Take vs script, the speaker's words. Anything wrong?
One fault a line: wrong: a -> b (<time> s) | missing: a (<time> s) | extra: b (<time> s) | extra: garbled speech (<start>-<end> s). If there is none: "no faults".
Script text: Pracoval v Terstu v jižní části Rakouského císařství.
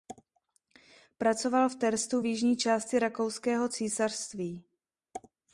no faults